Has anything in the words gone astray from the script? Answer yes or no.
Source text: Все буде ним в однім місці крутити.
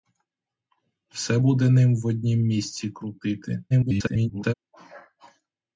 yes